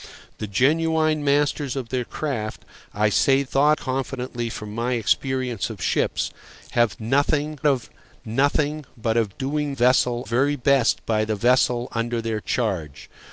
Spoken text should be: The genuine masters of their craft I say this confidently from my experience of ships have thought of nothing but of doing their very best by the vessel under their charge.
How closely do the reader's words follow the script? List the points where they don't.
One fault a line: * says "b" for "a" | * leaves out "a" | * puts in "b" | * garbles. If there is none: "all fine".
* says "thought" for "this"
* says "nothing" for "thought"
* says "vessel" for "their"